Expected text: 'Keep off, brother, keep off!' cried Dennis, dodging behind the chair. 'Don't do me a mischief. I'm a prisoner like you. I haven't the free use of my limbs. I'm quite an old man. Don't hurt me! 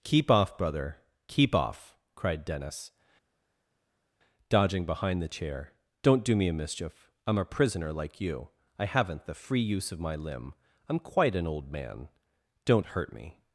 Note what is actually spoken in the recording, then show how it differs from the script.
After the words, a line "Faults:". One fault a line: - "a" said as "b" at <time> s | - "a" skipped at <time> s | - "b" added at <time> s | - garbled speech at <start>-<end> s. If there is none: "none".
'Keep off, brother, keep off!' cried Dennis, dodging behind the chair. 'Don't do me a mischief. I'm a prisoner like you. I haven't the free use of my limb. I'm quite an old man. Don't hurt me!
Faults:
- "limbs" said as "limb" at 10.2 s